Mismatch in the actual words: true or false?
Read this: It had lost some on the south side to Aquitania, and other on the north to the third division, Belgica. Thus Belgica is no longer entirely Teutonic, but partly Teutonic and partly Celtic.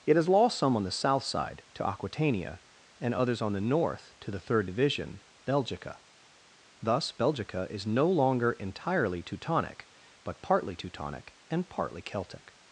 true